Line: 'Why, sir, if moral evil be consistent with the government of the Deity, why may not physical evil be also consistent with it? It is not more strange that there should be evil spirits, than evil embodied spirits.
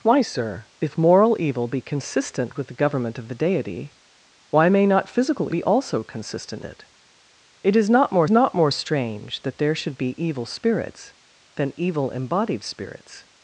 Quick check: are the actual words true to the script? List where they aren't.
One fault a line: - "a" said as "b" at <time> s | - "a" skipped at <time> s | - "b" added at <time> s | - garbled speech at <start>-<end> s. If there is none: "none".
- "evil" skipped at 5.5 s
- "with" skipped at 6.6 s
- "not more" added at 8.3 s